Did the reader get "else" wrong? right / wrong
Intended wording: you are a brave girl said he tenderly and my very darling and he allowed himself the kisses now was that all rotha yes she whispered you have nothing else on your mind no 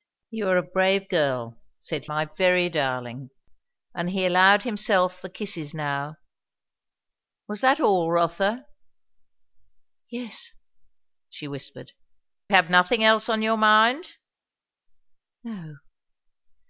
right